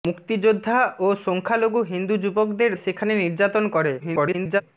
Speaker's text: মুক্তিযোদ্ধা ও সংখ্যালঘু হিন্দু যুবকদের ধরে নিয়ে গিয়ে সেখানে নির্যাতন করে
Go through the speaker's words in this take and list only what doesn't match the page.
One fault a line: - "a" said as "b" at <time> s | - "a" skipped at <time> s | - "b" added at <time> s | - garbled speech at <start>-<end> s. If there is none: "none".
- "ধরে নিয়ে গিয়ে" skipped at 2.7 s
- garbled speech at 4.0-4.6 s